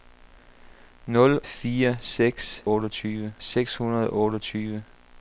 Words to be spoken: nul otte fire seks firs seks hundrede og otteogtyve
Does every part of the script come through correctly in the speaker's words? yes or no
no